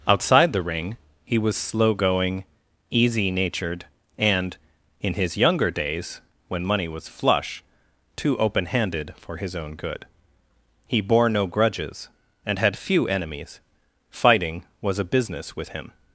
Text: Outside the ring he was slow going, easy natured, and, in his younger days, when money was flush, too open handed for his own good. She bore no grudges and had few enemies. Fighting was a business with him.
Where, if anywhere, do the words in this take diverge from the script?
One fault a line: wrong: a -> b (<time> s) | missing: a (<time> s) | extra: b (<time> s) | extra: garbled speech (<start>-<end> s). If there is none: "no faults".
wrong: She -> He (10.9 s)